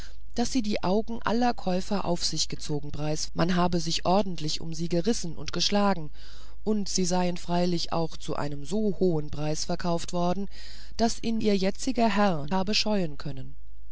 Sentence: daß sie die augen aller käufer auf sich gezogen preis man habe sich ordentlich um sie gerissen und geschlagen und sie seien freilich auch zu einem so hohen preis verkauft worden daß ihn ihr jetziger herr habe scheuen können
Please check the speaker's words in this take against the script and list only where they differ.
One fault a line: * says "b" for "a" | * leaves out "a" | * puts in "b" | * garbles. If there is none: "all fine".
all fine